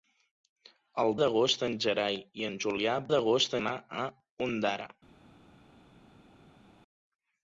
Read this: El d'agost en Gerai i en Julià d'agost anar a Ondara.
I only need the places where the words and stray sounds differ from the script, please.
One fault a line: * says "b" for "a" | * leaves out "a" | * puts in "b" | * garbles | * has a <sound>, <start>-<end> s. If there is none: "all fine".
all fine